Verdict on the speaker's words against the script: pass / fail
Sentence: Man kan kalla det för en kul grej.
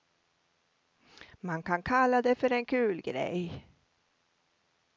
pass